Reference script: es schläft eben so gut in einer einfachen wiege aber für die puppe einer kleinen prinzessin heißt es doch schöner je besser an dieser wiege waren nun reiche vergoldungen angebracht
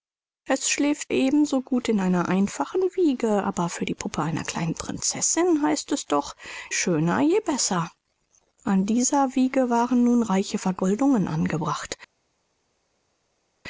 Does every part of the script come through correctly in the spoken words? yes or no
yes